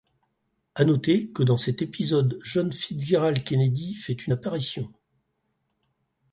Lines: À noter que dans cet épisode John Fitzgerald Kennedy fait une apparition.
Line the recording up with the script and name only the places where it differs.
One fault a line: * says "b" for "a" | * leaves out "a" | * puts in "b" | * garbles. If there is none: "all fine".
all fine